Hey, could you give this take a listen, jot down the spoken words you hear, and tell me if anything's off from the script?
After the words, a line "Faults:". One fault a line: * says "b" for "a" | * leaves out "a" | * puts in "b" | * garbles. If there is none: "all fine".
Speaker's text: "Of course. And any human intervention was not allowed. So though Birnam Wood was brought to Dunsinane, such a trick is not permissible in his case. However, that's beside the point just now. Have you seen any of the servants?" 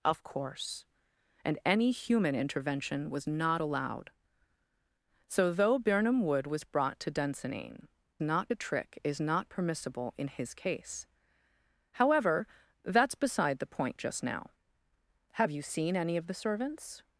"Of course. And any human intervention was not allowed. So though Birnam Wood was brought to Dunsinane, not a trick is not permissible in his case. However, that's beside the point just now. Have you seen any of the servants?"
Faults:
* says "not" for "such"